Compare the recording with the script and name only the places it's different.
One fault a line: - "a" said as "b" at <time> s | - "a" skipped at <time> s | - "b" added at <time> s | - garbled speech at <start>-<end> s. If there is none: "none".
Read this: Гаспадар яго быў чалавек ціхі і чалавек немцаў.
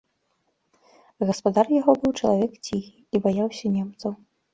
- "чалавек" said as "баяўся" at 3.3 s